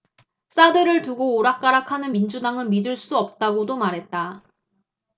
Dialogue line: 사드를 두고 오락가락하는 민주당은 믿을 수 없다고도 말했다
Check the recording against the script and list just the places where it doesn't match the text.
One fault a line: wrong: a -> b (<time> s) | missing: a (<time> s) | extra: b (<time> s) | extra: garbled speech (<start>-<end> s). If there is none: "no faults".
no faults